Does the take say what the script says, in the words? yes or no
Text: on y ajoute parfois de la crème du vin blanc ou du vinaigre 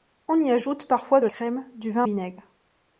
no